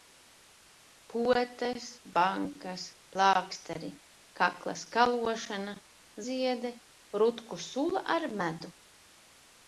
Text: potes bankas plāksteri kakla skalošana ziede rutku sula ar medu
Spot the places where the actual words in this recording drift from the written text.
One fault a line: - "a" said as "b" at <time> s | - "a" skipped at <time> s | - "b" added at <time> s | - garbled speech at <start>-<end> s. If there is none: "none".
none